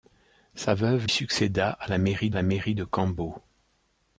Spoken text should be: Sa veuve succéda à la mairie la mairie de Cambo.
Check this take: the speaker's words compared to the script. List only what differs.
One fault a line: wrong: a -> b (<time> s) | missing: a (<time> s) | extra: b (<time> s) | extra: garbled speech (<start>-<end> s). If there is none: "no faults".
no faults